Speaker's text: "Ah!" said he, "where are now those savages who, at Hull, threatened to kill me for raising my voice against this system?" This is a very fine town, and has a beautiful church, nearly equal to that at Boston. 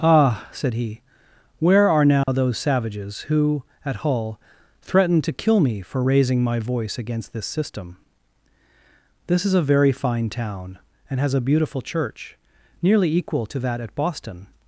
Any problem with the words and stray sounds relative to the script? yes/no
yes